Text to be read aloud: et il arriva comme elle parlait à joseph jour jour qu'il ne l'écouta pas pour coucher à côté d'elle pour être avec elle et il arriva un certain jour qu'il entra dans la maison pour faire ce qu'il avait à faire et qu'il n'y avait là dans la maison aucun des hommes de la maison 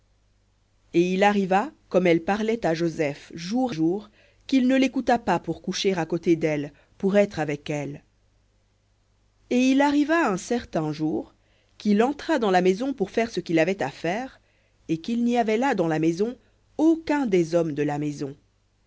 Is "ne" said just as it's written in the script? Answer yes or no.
yes